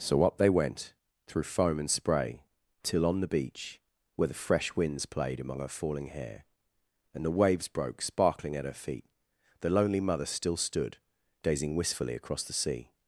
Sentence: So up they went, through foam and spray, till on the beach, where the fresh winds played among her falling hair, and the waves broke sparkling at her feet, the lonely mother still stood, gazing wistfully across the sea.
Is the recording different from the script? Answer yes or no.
no